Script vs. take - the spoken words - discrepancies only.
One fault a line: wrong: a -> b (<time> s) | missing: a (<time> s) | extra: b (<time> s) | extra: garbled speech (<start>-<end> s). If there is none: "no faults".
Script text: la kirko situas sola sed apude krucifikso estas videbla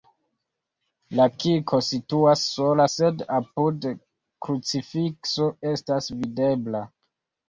no faults